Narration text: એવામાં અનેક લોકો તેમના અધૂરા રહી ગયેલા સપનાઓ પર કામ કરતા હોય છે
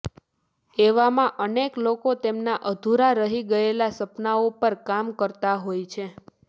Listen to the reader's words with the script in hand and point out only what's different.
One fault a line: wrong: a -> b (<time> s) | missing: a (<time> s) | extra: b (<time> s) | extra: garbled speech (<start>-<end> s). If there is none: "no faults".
no faults